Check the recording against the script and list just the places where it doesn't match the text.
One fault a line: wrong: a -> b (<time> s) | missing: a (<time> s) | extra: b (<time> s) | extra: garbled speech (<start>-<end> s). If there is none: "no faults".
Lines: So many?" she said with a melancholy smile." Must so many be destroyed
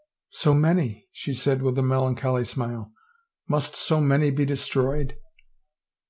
no faults